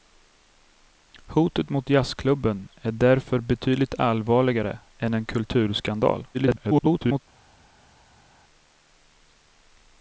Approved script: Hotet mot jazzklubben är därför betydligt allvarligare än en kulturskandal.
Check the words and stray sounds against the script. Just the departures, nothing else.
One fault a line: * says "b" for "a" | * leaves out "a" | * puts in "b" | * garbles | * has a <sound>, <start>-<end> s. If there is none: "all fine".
* garbles